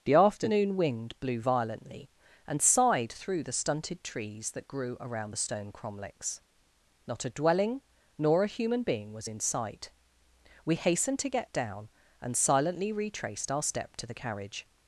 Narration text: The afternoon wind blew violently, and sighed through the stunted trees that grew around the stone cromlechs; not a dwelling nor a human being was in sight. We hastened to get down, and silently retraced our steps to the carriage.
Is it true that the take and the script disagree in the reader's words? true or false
true